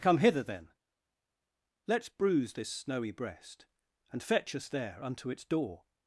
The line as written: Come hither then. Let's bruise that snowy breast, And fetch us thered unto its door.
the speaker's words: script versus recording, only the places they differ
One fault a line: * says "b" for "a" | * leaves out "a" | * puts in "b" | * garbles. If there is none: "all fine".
* says "this" for "that"
* says "there" for "thered"